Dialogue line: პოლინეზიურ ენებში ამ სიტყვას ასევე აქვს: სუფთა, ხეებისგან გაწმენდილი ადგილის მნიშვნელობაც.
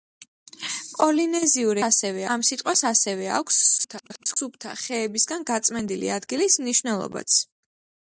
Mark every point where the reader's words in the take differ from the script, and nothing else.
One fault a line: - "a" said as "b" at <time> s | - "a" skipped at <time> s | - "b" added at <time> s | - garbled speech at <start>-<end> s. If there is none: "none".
- "ენებში" said as "ასევე" at 1.9 s
- garbled speech at 3.8-4.4 s